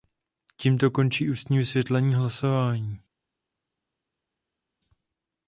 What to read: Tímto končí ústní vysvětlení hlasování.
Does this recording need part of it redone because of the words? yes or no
no